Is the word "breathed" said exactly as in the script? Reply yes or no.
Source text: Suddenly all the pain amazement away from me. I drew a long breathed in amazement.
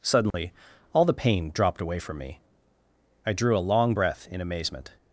no